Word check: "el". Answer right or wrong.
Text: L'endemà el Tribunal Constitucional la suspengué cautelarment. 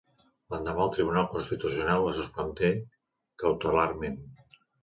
right